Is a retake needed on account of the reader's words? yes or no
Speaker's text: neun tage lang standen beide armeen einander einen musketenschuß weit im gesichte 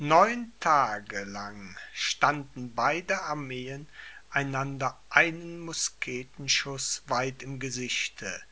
no